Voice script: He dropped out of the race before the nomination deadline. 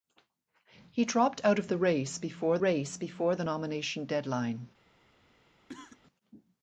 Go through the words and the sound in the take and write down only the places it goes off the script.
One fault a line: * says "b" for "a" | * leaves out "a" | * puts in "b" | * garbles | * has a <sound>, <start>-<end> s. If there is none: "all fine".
* puts in "race before"
* has a cough, 5.7-6.0 s